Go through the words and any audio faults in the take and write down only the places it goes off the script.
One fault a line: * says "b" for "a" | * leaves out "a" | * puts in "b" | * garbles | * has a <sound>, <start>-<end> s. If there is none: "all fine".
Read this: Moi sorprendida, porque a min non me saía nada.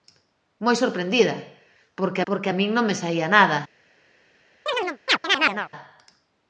* puts in "porque"
* has a chirp, 4.7-5.7 s